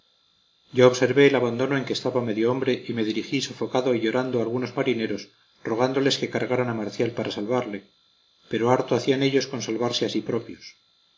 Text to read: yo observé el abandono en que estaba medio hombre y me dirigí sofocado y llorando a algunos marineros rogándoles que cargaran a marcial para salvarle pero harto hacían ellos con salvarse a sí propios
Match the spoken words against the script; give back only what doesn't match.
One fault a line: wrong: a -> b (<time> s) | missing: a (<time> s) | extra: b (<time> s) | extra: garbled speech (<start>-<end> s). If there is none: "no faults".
no faults